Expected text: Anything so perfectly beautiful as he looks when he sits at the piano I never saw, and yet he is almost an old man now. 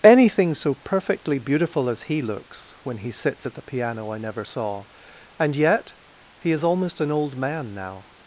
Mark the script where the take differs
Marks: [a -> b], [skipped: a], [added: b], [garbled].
Anything so perfectly beautiful as he looks when he sits at the piano I never saw, and yet he is almost an old man now.